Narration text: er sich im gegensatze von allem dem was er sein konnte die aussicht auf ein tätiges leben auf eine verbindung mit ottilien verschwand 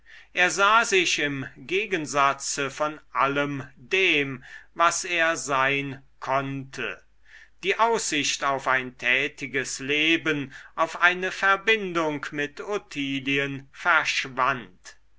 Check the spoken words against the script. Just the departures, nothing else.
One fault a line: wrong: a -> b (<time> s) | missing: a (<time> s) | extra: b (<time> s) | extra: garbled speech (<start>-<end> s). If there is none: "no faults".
extra: sah (0.5 s)